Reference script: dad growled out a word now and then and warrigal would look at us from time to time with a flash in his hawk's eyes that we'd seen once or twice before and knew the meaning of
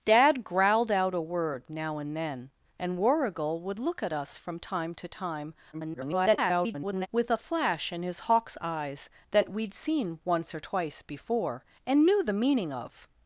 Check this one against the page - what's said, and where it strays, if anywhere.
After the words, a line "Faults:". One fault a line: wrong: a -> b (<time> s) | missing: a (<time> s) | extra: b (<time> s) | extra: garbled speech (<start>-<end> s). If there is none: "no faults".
dad growled out a word now and then and warrigal would look at us from time to time [garbled] with a flash in his hawk's eyes that we'd seen once or twice before and knew the meaning of
Faults:
extra: garbled speech (5.7-7.1 s)